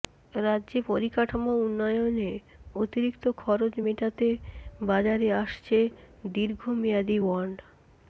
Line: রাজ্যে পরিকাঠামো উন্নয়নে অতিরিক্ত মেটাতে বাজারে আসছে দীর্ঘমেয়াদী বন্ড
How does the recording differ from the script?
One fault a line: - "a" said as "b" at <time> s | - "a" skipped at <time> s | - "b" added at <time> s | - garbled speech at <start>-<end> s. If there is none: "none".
- "খরচ" added at 3.4 s